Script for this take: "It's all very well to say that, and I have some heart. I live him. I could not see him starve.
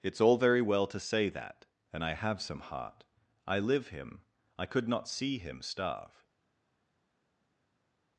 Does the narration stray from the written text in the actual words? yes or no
no